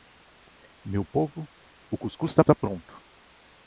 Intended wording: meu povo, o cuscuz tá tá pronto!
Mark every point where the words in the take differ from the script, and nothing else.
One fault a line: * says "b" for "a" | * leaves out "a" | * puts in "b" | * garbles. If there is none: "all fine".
all fine